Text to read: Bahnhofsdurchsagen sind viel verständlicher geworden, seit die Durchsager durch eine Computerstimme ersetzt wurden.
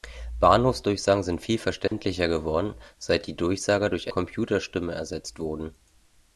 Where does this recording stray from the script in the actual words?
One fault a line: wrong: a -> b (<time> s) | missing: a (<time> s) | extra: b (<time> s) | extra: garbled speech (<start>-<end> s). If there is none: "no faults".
missing: eine (4.1 s)